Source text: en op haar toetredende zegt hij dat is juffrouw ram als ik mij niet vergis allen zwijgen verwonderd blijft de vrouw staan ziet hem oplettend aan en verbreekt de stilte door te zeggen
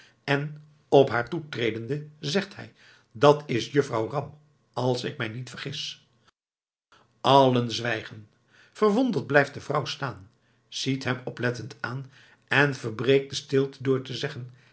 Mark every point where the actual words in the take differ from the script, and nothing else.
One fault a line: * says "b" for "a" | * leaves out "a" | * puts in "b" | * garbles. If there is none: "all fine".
all fine